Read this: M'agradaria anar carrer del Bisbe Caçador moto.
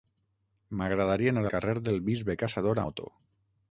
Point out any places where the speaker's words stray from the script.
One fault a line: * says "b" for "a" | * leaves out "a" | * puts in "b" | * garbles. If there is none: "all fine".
all fine